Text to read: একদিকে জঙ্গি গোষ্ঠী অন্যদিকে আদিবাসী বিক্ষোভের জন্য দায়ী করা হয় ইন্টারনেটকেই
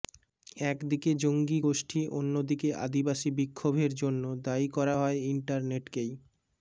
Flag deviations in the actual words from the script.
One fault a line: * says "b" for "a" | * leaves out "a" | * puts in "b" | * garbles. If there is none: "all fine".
all fine